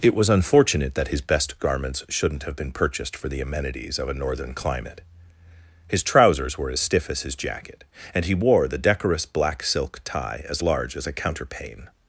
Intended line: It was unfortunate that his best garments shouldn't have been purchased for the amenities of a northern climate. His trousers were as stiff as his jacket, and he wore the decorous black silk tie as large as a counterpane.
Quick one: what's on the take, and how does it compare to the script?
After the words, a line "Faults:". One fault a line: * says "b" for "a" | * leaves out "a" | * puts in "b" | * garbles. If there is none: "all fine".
It was unfortunate that his best garments shouldn't have been purchased for the amenities of a northern climate. His trousers were as stiff as his jacket, and he wore the decorous black silk tie as large as a counterpane.
Faults:
all fine